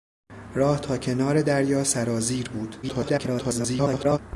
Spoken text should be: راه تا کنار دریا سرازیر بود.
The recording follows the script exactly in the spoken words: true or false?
false